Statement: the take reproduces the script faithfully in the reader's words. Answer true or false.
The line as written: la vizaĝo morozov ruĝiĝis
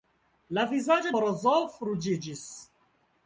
true